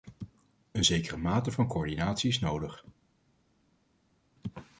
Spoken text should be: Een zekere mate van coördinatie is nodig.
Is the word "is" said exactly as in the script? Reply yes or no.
yes